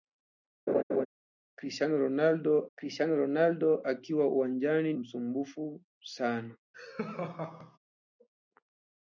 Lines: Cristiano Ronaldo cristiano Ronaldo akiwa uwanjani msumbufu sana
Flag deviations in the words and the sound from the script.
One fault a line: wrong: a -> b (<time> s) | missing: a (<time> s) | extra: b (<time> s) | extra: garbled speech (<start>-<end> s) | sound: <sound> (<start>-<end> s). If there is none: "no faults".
sound: laugh (0.7-1.1 s)
sound: laugh (6.7-7.8 s)